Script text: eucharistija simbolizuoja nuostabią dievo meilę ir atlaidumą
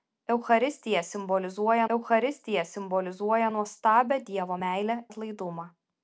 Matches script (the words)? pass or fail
fail